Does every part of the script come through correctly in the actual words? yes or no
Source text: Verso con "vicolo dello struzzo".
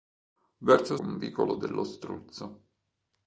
yes